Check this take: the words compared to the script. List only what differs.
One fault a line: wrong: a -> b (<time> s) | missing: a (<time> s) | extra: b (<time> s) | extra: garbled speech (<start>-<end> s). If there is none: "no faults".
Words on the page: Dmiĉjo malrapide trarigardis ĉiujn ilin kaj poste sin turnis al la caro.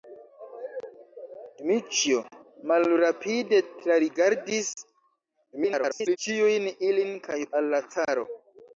extra: garbled speech (5.5-6.2 s)
missing: poste sin turnis (7.4 s)